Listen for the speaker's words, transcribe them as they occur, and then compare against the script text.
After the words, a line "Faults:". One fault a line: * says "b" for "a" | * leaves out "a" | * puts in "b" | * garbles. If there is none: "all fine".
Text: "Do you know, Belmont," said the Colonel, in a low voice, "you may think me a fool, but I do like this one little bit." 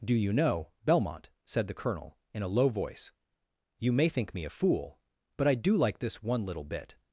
"Do you know, Belmont," said the Colonel, in a low voice, "you may think me a fool, but I do like this one little bit."
Faults:
all fine